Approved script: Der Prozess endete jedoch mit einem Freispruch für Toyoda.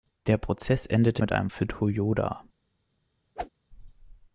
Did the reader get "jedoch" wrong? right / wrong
wrong